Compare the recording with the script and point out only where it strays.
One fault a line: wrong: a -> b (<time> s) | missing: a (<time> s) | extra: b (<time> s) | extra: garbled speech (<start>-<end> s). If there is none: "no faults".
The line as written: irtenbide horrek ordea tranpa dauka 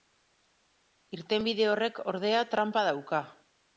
no faults